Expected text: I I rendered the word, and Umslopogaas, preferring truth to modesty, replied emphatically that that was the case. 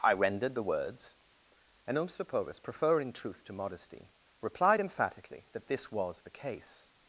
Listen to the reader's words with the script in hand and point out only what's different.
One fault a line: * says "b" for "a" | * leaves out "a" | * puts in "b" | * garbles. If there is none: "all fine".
* leaves out "I"
* says "words" for "word"
* says "this" for "that"